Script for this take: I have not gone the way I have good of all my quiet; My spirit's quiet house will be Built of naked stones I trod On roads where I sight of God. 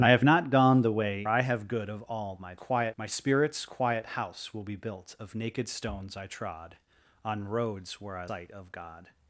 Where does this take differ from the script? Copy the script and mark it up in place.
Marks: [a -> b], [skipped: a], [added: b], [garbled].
I have not gone the way I have good of all my quiet; My spirit's quiet house will be Built of naked stones I trod On roads where I sight of God.